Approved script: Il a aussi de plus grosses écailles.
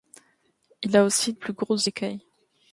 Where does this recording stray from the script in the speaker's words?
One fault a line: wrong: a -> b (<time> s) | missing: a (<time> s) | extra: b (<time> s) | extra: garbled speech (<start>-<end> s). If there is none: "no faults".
missing: de (1.3 s)